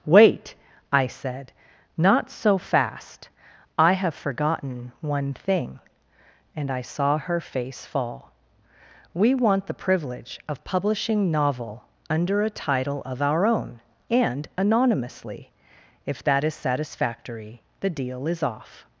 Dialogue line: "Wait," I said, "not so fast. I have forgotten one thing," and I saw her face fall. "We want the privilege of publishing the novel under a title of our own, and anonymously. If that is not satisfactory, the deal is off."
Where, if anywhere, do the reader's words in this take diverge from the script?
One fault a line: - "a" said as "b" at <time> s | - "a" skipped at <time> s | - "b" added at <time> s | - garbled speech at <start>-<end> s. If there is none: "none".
- "the" skipped at 11.3 s
- "not" skipped at 16.6 s